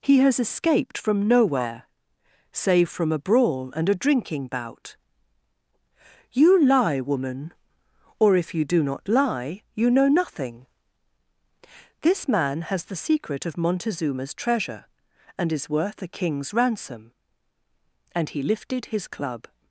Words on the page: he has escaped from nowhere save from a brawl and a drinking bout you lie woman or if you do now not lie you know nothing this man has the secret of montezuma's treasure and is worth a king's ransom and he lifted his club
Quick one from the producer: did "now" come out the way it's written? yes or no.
no